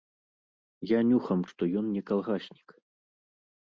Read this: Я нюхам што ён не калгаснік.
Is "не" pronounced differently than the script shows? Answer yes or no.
no